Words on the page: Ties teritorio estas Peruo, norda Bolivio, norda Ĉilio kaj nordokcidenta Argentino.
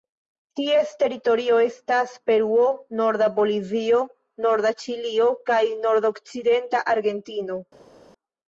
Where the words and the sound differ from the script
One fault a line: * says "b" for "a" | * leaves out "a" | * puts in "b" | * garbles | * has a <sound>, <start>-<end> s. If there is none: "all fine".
all fine